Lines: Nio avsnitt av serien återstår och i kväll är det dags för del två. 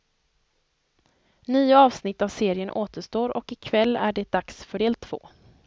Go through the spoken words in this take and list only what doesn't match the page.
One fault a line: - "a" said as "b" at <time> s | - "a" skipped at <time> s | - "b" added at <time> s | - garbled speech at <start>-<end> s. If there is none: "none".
none